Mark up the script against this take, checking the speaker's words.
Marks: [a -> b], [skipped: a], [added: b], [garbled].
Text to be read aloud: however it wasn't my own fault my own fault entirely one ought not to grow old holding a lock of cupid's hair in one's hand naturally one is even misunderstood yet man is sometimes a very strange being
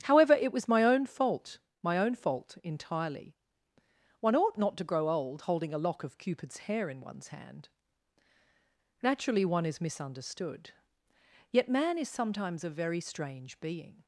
however it [wasn't -> was] my own fault my own fault entirely one ought not to grow old holding a lock of cupid's hair in one's hand naturally one is [skipped: even] misunderstood yet man is sometimes a very strange being